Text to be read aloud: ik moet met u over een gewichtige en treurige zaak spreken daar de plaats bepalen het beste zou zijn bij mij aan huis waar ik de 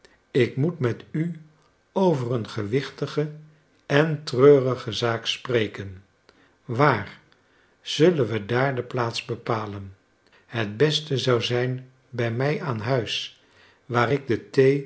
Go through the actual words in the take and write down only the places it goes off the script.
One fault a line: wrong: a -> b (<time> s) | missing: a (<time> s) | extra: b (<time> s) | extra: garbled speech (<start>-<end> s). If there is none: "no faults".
extra: waar zullen we (6.7 s)